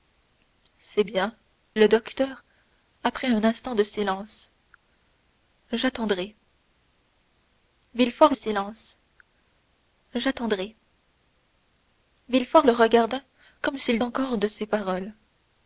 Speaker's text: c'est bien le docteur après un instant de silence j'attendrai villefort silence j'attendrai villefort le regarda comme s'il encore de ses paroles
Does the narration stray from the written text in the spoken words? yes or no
no